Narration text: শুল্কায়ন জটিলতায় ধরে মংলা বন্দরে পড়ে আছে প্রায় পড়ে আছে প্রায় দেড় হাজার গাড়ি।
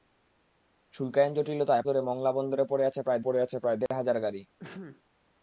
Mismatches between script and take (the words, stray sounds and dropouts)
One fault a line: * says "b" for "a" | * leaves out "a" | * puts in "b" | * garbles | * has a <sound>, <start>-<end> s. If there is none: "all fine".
* has a dropout, 3.9-3.9 s
* has a sneeze, 4.6-5.0 s